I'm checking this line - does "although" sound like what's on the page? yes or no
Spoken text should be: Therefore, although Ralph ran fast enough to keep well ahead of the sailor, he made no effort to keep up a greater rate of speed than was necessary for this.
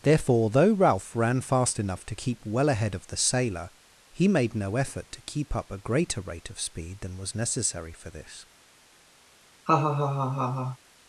no